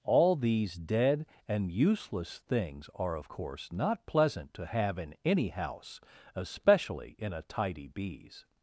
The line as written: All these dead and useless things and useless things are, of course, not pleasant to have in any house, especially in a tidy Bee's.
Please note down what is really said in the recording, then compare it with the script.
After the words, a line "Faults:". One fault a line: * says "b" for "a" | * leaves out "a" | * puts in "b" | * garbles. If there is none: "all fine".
All these dead and useless things are, of course, not pleasant to have in any house, especially in a tidy Bee's.
Faults:
* leaves out "and useless things"